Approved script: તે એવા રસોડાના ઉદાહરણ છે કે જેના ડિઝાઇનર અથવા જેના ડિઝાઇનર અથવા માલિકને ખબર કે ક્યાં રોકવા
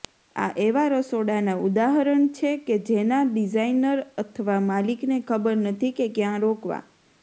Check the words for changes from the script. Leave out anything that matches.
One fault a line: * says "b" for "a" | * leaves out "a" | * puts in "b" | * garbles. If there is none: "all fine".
* says "આ" for "તે"
* leaves out "જેના ડિઝાઇનર અથવા"
* puts in "નથી"